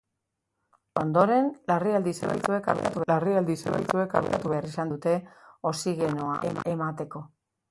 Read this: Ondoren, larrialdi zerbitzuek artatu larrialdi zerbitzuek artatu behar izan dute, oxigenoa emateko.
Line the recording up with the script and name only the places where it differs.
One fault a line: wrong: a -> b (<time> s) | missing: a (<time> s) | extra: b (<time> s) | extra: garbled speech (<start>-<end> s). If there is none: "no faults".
no faults